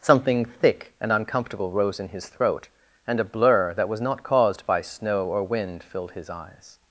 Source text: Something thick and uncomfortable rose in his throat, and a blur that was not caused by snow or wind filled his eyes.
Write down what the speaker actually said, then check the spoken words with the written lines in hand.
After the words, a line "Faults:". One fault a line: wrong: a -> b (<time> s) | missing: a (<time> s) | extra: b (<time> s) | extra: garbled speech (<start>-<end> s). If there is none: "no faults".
Something thick and uncomfortable rose in his throat, and a blur that was not caused by snow or wind filled his eyes.
Faults:
no faults